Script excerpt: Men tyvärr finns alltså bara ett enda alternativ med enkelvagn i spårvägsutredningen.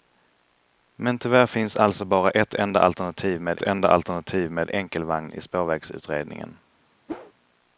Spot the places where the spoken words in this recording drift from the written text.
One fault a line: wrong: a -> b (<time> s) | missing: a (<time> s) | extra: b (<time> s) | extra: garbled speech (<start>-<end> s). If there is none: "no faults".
extra: enda alternativ med (3.6 s)